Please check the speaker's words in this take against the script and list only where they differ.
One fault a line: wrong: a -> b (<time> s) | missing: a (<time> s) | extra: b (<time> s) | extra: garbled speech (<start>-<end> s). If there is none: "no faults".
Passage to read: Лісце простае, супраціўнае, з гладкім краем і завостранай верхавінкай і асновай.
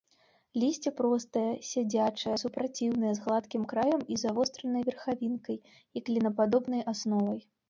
extra: сядзячае (1.7 s)
extra: клінападобнай (6.1 s)